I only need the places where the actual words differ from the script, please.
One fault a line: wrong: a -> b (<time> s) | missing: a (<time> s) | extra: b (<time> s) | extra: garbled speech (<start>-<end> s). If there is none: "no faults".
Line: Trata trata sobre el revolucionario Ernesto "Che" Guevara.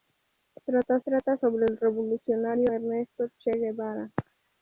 no faults